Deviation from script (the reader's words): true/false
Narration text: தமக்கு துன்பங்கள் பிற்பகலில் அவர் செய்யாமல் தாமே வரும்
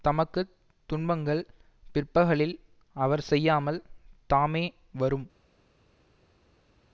false